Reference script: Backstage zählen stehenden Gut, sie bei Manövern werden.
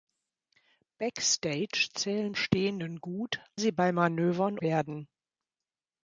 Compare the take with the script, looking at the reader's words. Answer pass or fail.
pass